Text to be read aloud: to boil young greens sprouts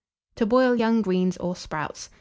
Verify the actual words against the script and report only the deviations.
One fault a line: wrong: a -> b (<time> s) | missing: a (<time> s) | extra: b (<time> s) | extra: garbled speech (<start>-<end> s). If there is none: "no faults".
extra: or (1.4 s)